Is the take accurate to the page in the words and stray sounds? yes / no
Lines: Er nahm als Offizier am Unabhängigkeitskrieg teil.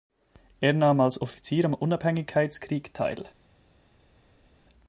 yes